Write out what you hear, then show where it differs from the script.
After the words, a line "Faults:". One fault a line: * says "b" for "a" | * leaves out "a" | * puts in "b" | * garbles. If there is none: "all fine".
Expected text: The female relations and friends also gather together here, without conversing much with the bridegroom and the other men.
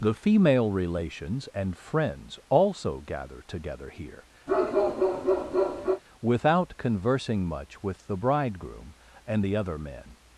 The female relations and friends also gather together here, without conversing much with the bridegroom and the other men.
Faults:
all fine